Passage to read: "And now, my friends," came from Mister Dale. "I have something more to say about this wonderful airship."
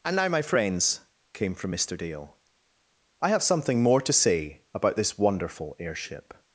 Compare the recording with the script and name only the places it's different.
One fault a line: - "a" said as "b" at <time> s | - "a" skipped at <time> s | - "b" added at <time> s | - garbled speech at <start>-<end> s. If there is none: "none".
none